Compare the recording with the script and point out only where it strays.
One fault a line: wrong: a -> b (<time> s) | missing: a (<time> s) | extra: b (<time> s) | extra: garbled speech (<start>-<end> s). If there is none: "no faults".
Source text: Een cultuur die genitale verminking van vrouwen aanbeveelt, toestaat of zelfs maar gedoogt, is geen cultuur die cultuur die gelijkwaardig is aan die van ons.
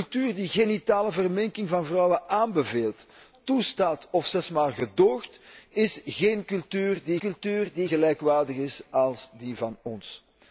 no faults